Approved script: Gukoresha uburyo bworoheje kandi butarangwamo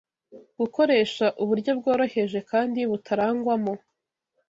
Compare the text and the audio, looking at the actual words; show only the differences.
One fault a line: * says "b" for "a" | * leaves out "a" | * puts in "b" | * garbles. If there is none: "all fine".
all fine